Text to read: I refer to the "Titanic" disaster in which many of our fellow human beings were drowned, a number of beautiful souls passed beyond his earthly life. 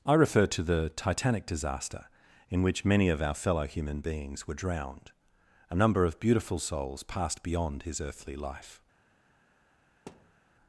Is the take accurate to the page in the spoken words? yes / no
yes